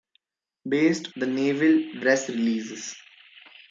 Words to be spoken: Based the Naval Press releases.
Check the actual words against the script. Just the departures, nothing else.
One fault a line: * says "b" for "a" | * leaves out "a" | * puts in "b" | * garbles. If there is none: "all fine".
all fine